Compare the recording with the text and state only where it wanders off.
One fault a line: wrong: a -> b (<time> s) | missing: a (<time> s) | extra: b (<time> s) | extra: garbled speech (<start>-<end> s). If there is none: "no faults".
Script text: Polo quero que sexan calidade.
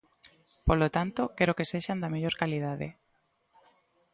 extra: tanto (1.0 s)
extra: da mellor (2.0 s)